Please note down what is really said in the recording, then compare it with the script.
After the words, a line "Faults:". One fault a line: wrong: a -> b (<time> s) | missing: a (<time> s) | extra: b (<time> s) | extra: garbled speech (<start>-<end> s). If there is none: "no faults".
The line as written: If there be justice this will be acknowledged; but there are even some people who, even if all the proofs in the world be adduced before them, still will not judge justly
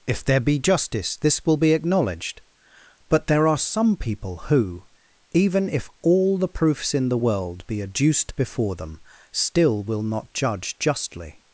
If there be justice this will be acknowledged; but there are some people who, even if all the proofs in the world be adduced before them, still will not judge justly
Faults:
missing: even (3.6 s)